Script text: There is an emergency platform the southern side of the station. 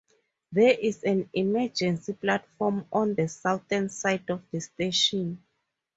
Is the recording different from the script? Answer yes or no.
yes